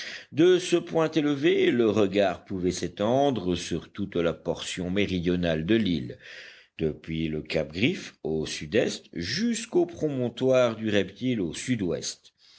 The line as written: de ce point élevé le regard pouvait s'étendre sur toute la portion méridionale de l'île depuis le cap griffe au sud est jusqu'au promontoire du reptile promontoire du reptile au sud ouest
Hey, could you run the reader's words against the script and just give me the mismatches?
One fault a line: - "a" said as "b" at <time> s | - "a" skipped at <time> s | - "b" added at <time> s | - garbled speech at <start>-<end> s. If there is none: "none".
- "promontoire du reptile" skipped at 11.4 s